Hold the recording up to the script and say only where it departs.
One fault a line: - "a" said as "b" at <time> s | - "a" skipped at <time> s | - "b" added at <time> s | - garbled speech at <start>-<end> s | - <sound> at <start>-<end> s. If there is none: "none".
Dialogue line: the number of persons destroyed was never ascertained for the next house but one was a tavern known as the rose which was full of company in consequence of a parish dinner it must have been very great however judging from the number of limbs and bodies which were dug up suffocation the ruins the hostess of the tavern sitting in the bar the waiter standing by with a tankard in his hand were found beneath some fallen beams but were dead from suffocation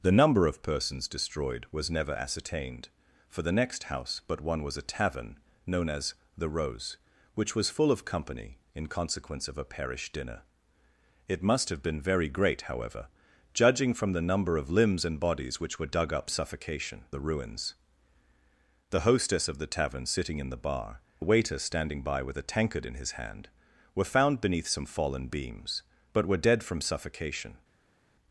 none